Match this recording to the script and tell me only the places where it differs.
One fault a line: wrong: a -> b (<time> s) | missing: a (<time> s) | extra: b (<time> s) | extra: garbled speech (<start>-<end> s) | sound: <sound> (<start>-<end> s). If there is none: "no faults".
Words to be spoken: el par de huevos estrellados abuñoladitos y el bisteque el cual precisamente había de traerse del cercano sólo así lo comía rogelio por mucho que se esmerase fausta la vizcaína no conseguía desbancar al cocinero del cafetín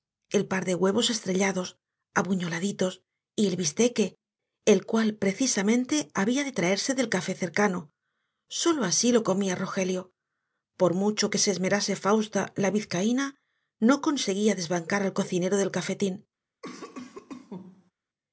extra: café (7.1 s)
sound: cough (16.6-17.9 s)